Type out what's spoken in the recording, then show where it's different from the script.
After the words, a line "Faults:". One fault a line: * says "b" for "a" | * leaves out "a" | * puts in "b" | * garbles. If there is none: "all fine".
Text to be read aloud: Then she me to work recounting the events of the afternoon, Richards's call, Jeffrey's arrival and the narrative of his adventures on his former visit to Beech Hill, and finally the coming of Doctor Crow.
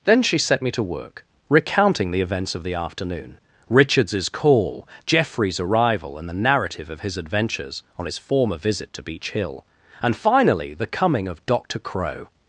Then she set me to work recounting the events of the afternoon, Richards's call, Jeffrey's arrival and the narrative of his adventures on his former visit to Beech Hill, and finally the coming of Doctor Crow.
Faults:
* puts in "set"